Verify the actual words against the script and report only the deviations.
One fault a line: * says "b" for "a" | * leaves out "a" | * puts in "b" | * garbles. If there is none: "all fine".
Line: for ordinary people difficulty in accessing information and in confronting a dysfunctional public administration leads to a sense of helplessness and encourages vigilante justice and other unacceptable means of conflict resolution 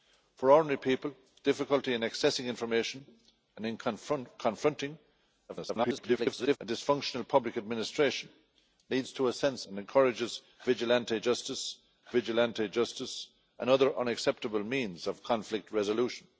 * garbles
* says "and encourages vigilante justice" for "of helplessness and encourages"